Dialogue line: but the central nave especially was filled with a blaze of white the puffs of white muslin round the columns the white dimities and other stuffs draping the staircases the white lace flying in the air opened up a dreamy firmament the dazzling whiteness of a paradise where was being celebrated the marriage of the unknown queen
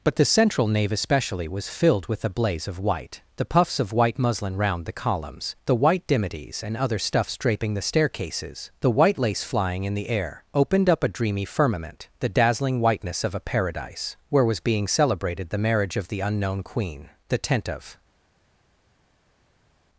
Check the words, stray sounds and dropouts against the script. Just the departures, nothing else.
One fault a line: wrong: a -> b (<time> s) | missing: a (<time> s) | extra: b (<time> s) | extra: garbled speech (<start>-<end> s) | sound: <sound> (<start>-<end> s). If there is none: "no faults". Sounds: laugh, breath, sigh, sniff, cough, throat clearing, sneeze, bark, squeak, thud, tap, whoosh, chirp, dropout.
extra: the tent of (17.3 s)